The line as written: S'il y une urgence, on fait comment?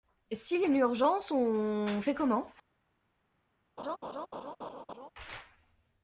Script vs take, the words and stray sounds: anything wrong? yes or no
yes